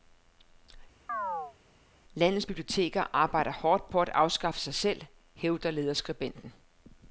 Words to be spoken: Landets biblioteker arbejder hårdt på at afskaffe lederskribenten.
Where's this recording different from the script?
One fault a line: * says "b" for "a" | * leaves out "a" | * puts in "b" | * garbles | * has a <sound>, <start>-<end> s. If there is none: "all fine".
* has a chirp, 1.1-1.6 s
* puts in "sig selv hævder"